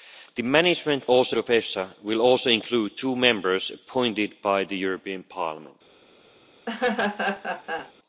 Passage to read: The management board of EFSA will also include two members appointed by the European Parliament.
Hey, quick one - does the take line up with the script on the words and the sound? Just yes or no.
no